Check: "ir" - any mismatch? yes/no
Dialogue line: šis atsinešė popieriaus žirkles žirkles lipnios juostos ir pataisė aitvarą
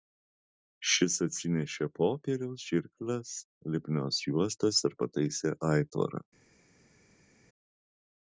no